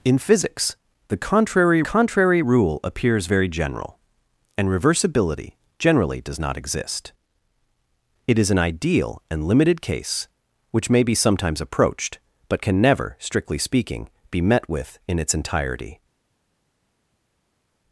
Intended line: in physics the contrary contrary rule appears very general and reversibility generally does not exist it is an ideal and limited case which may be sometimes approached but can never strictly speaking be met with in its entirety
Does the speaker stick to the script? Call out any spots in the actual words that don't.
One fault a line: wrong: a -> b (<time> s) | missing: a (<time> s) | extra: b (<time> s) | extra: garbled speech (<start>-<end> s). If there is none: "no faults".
no faults